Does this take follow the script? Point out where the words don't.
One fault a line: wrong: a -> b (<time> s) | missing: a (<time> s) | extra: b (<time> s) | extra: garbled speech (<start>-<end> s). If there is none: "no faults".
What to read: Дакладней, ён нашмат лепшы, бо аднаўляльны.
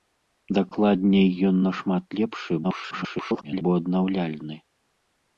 extra: garbled speech (2.6-3.6 s)